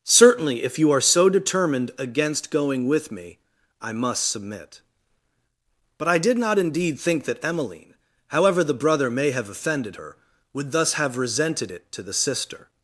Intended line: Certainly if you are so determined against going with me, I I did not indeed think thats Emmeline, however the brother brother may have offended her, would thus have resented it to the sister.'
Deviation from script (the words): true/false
true